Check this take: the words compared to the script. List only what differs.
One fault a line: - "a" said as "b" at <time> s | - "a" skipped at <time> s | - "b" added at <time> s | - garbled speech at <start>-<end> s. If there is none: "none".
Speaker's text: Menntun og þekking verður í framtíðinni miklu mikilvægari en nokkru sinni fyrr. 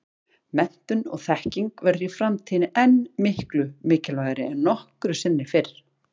- "enn" added at 2.9 s